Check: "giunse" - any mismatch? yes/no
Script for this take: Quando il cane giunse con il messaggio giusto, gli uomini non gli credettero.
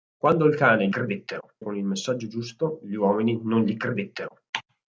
yes